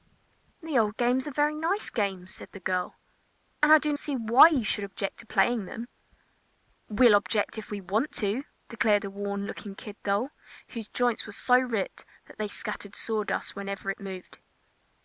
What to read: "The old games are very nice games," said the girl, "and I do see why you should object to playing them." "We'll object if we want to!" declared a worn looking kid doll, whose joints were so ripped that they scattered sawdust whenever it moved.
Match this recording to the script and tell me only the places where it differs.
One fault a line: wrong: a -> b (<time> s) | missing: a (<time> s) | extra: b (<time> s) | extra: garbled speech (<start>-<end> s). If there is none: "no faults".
no faults